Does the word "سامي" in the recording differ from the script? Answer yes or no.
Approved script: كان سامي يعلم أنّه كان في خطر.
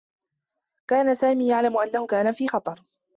no